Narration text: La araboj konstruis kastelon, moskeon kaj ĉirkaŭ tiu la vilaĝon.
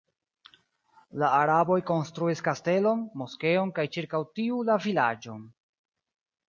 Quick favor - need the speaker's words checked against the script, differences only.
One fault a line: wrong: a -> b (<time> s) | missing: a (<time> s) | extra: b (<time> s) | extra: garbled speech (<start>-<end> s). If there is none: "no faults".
no faults